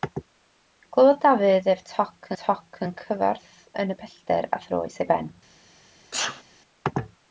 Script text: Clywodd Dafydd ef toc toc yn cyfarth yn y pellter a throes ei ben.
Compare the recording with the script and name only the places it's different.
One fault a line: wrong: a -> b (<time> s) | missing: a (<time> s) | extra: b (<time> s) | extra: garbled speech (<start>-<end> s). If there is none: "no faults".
no faults